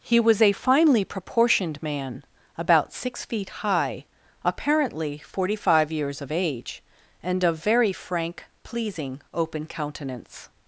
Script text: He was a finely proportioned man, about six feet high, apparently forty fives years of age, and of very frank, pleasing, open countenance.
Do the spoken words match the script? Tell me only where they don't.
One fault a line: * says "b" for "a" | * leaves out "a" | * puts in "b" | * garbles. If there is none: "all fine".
* says "five" for "fives"